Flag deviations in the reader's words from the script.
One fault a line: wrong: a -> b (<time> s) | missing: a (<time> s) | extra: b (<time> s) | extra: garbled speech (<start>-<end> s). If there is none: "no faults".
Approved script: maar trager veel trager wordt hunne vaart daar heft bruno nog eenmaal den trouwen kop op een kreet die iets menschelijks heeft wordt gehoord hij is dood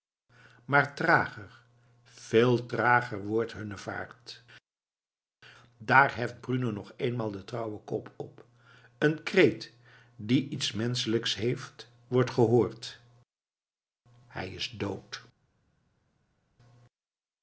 no faults